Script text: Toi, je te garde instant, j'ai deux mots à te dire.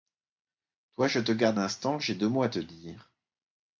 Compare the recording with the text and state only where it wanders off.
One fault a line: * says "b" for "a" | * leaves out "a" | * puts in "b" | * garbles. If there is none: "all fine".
all fine